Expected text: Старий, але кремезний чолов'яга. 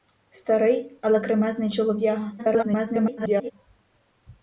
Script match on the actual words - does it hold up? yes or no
no